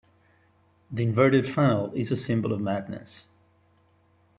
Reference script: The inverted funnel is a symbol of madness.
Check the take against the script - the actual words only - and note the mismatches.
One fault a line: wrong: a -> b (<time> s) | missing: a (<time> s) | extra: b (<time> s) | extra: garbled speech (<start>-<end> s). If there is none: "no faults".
no faults